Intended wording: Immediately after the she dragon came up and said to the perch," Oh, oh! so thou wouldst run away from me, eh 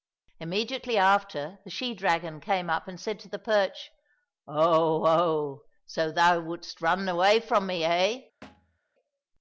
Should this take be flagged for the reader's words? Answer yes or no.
no